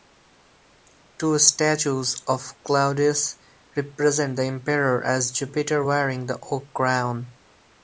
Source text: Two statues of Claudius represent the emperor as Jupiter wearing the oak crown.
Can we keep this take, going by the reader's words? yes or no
yes